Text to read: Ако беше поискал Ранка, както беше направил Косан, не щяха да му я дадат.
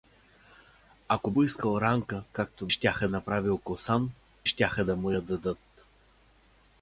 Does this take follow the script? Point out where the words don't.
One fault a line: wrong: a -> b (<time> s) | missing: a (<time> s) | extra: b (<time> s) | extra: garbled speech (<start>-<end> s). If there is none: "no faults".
missing: беше (1.3 s)
wrong: беше -> щяха (2.7 s)
missing: не (4.1 s)